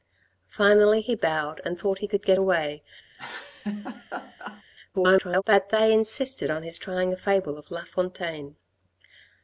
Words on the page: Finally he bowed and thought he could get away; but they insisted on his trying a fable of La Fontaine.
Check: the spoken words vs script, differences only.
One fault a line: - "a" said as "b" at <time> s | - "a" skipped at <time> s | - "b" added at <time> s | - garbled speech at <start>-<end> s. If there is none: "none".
- garbled speech at 4.9-5.4 s